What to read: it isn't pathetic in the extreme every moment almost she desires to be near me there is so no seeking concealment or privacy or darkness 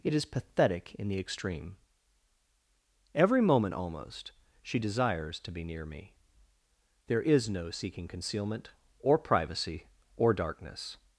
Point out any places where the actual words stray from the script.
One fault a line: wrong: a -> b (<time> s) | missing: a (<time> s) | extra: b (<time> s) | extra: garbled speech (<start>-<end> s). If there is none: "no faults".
wrong: isn't -> is (0.1 s)
missing: so (7.5 s)